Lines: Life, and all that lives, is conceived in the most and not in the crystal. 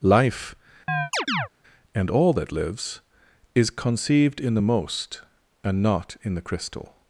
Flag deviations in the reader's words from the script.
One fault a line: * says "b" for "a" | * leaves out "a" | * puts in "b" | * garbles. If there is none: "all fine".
all fine